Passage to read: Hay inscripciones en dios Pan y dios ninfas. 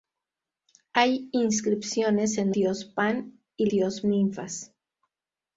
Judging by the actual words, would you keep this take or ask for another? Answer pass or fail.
pass